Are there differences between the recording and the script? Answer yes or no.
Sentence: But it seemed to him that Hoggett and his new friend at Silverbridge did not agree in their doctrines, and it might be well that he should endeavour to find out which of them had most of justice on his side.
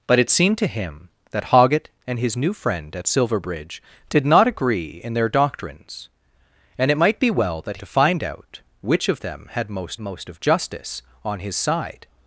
yes